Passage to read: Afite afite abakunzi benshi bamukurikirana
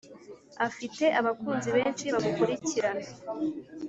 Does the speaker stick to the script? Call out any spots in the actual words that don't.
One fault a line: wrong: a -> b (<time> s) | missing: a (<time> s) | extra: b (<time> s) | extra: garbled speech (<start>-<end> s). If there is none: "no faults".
missing: afite (1.1 s)